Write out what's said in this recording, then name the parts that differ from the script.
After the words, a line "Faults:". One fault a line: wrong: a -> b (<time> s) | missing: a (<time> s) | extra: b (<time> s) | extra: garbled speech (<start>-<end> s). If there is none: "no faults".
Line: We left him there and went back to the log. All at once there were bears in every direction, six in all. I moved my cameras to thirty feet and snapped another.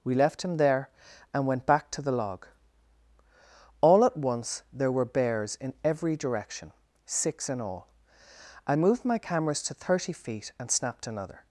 We left him there and went back to the log. All at once there were bears in every direction, six in all. I moved my cameras to thirty feet and snapped another.
Faults:
no faults